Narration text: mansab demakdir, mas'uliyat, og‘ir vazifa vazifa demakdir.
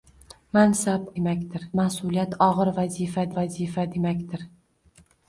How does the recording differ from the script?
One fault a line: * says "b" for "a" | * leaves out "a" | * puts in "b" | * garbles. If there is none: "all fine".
all fine